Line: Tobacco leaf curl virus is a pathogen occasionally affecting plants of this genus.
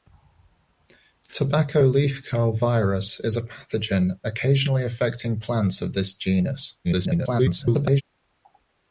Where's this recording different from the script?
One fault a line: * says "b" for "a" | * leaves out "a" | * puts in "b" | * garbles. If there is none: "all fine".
* garbles